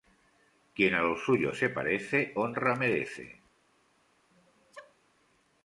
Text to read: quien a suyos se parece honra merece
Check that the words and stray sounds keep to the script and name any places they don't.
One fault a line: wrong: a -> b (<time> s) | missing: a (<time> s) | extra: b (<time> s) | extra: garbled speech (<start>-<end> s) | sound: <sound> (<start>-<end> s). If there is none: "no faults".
extra: los (1.0 s)
sound: sneeze (4.3-5.0 s)